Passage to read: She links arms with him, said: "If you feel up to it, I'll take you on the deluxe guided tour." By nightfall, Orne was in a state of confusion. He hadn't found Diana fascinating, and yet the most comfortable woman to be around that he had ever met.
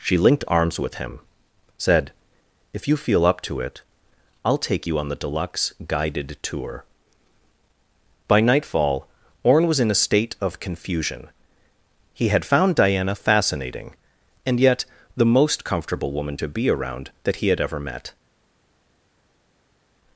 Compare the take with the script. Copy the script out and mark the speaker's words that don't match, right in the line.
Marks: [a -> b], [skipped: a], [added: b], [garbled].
She [links -> linked] arms with him, said: "If you feel up to it, I'll take you on the deluxe guided tour." By nightfall, Orne was in a state of confusion. He [hadn't -> had] found Diana fascinating, and yet the most comfortable woman to be around that he had ever met.